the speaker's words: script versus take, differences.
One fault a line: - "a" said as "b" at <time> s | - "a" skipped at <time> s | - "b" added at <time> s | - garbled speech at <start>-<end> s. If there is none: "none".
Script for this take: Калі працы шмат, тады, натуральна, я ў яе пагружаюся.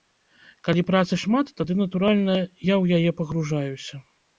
none